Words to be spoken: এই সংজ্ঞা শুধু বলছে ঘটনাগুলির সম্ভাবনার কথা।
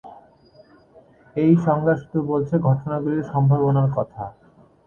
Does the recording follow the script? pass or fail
pass